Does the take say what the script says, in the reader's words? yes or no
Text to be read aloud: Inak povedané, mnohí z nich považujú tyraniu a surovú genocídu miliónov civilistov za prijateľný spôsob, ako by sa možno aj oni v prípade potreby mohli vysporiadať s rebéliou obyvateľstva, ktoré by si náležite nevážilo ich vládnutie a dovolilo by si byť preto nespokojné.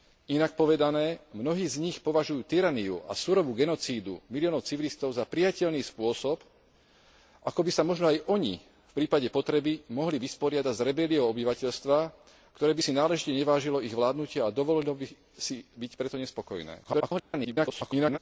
no